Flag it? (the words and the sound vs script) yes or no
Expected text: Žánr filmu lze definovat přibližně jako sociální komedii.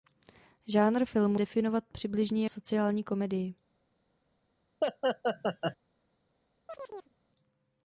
yes